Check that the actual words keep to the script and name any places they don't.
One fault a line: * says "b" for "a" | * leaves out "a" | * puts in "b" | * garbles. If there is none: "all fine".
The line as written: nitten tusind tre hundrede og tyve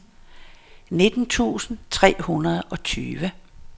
all fine